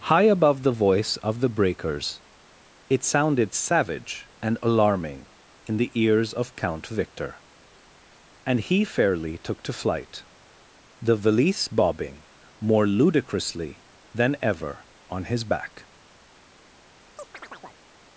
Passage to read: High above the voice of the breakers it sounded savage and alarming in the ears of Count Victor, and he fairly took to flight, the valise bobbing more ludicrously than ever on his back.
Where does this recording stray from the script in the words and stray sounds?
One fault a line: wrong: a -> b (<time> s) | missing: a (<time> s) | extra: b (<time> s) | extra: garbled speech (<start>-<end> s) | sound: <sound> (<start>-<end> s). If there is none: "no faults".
sound: chirp (17.2-17.8 s)